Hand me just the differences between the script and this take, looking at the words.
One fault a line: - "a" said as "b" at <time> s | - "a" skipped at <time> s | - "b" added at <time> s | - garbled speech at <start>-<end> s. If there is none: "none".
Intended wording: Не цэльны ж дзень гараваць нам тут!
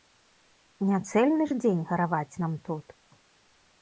none